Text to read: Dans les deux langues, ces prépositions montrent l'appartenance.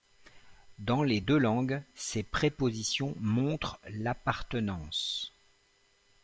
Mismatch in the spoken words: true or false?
false